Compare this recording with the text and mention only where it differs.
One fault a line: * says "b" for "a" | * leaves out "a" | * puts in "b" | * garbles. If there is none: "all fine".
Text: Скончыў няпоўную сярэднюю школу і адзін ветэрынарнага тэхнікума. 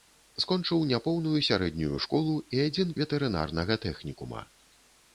all fine